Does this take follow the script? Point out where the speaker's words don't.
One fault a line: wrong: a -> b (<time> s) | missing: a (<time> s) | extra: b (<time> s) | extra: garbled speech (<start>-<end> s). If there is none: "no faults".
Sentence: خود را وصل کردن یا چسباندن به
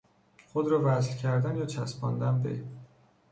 no faults